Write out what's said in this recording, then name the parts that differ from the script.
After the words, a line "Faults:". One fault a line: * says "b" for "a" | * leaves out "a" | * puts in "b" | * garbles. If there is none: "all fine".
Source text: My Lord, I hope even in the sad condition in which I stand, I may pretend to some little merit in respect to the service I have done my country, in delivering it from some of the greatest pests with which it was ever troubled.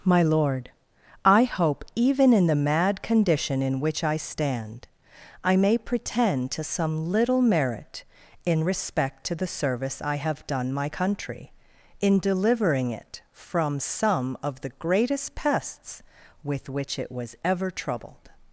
My Lord, I hope even in the mad condition in which I stand, I may pretend to some little merit in respect to the service I have done my country, in delivering it from some of the greatest pests with which it was ever troubled.
Faults:
* says "mad" for "sad"